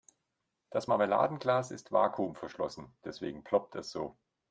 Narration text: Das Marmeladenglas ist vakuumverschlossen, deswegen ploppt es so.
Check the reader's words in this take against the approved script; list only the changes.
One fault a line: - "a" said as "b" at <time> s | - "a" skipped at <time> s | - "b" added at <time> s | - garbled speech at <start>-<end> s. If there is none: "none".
none